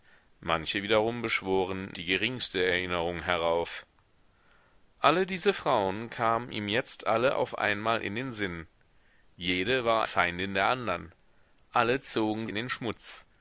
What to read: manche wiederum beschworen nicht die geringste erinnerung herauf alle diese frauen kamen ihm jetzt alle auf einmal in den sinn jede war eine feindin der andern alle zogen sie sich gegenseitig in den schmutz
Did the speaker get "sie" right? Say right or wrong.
wrong